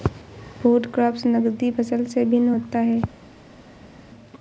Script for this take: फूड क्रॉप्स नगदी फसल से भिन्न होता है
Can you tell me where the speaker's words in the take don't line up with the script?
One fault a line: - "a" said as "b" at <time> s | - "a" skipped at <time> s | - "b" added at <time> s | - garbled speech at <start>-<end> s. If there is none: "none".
none